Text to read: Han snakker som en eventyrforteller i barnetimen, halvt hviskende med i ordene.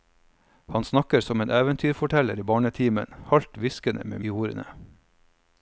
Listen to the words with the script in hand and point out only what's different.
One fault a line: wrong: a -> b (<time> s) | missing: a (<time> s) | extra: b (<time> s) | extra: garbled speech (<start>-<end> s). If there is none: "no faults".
no faults